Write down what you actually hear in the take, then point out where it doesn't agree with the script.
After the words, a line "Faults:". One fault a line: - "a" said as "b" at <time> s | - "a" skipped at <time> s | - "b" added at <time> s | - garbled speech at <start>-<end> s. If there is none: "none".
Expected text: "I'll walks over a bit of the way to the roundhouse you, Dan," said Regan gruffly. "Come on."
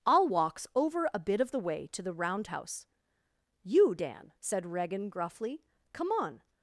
"I'll walks over a bit of the way to the roundhouse you, Dan," said Regan gruffly. "Come on."
Faults:
none